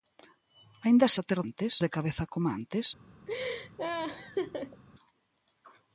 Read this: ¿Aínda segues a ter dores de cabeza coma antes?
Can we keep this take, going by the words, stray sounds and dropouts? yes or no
no